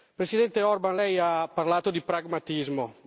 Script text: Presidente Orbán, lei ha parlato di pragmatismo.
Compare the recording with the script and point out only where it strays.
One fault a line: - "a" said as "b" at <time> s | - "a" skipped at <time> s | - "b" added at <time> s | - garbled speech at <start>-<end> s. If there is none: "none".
none